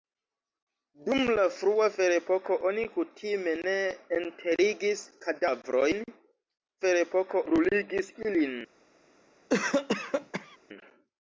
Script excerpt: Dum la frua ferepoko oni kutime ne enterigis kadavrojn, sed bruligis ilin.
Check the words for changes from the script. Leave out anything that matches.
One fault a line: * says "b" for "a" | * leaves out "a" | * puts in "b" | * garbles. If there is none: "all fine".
* says "ferepoko" for "sed"